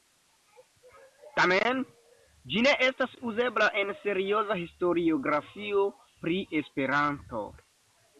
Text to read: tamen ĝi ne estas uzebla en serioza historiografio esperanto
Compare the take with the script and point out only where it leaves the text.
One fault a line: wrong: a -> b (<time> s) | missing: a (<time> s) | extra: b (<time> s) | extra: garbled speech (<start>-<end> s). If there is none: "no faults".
extra: pri (6.2 s)